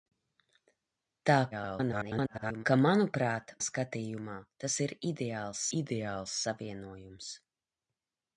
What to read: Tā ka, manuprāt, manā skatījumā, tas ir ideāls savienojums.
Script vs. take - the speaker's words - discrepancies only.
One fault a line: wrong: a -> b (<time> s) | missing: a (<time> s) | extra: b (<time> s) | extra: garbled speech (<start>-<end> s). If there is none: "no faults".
extra: garbled speech (1.5-2.7 s)
missing: manā (3.5 s)
extra: ideāls (5.8 s)